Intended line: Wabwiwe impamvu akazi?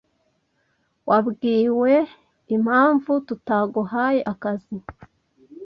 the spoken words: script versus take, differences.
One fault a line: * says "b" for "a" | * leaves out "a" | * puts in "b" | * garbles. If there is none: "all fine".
* puts in "tutaguhaye"